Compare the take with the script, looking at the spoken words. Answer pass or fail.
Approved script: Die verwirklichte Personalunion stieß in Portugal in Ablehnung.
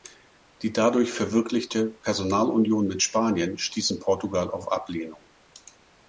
fail